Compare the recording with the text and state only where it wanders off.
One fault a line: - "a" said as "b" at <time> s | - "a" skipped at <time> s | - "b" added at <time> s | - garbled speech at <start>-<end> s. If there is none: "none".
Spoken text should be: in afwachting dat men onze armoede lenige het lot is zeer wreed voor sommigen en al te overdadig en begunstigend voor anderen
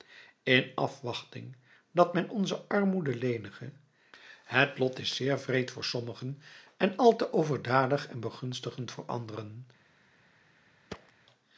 none